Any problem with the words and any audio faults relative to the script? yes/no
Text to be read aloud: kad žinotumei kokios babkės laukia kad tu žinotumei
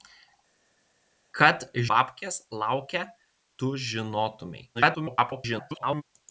yes